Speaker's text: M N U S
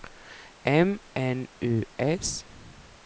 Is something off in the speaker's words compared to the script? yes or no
no